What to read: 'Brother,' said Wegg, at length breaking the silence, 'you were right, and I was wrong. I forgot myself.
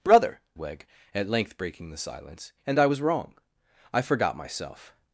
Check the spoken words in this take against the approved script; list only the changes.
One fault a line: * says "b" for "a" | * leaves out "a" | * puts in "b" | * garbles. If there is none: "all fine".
* leaves out "said"
* leaves out "you were right"